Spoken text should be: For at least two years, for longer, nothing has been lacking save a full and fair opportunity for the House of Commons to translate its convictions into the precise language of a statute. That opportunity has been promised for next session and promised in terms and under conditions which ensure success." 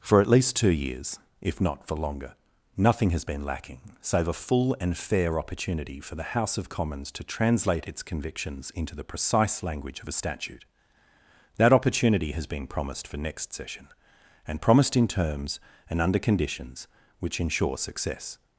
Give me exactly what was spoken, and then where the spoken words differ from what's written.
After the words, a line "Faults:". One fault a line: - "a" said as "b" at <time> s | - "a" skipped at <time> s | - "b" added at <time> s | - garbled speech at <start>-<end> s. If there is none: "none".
For at least two years, if not for longer, nothing has been lacking save a full and fair opportunity for the House of Commons to translate its convictions into the precise language of a statute. That opportunity has been promised for next session and promised in terms and under conditions which ensure success."
Faults:
- "if not" added at 1.4 s